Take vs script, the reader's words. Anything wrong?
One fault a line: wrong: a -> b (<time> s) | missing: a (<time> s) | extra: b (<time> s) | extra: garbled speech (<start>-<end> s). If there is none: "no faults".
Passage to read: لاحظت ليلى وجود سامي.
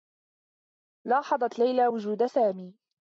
no faults